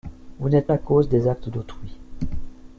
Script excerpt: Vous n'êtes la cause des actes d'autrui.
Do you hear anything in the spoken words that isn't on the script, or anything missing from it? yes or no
no